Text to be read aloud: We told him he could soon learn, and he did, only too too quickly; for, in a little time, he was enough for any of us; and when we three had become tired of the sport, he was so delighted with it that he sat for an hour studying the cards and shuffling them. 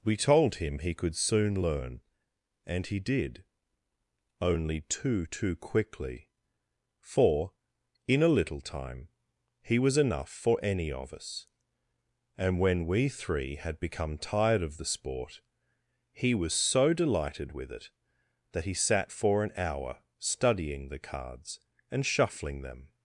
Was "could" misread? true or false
false